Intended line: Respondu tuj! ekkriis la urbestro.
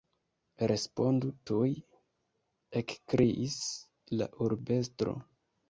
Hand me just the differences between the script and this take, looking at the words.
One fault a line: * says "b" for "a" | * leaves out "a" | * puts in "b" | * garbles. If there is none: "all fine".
all fine